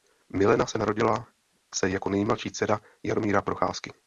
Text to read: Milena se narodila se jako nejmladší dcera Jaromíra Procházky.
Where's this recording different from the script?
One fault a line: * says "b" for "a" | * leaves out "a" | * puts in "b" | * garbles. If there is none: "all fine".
all fine